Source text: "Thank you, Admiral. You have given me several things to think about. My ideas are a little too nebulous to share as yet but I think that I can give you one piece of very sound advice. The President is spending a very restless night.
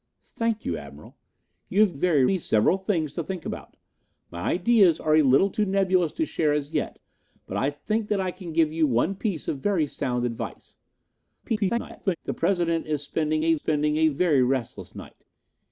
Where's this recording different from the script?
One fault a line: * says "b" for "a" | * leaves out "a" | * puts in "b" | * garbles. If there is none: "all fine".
* says "very" for "given"
* garbles
* puts in "spending a"